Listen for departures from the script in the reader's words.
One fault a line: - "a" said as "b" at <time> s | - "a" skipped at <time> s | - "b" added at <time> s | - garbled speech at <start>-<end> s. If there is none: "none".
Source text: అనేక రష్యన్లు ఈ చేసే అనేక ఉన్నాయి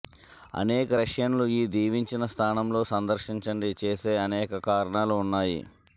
- "దీవించిన స్థానంలో సందర్శించండి" added at 1.7 s
- "కారణాలు" added at 4.7 s